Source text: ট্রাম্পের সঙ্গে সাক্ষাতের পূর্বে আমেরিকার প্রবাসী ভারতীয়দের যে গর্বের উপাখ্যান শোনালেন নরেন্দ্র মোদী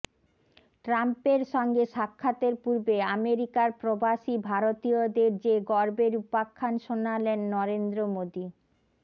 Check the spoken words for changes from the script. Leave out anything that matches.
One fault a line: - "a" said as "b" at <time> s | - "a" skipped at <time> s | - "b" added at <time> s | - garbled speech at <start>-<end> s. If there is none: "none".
none